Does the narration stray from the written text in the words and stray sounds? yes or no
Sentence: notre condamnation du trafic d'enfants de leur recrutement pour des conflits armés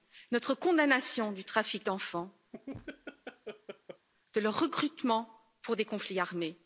yes